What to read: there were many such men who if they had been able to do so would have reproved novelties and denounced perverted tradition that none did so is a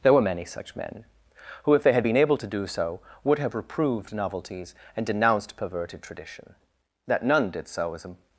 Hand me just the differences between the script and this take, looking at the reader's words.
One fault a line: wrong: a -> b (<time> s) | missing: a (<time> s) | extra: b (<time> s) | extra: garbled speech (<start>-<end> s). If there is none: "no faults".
no faults